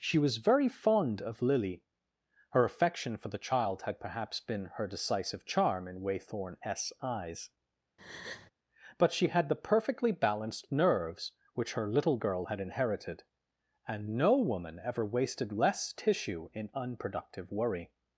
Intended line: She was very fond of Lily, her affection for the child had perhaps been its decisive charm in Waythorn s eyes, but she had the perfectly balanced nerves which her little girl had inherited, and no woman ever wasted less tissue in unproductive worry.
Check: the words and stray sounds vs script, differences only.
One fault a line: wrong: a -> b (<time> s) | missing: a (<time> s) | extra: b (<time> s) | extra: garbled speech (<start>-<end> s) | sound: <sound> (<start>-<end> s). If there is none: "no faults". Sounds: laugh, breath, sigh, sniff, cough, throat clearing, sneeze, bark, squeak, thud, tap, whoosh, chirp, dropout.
wrong: its -> her (4.8 s)
sound: breath (8.0-8.5 s)